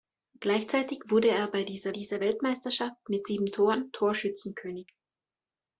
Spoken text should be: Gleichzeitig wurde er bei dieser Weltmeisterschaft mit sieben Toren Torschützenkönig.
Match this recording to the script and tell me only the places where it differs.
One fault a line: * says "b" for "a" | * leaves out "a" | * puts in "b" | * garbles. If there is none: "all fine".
* puts in "dieser"